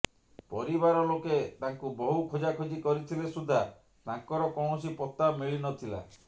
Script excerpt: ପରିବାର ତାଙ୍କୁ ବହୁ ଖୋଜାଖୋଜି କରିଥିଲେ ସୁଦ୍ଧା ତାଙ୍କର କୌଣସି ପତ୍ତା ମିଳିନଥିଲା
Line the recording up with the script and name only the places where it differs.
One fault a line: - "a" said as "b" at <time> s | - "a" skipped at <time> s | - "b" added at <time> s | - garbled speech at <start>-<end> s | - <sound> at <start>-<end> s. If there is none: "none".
- "ଲୋକେ" added at 1.1 s